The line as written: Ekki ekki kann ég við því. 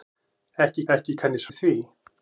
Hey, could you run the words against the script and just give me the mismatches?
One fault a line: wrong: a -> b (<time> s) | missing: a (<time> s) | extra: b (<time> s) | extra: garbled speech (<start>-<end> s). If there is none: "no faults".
no faults